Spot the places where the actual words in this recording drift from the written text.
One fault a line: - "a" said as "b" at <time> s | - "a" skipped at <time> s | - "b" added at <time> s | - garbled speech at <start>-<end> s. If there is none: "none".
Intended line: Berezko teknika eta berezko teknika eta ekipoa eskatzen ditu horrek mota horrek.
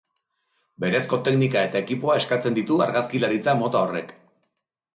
- "berezko teknika eta" skipped at 1.8 s
- "horrek" said as "argazkilaritza" at 2.9 s